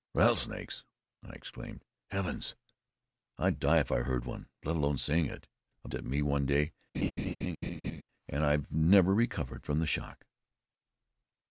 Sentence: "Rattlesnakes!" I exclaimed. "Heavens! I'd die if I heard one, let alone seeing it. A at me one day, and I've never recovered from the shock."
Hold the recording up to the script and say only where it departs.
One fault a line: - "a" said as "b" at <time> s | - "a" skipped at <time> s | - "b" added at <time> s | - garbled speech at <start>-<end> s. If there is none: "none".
none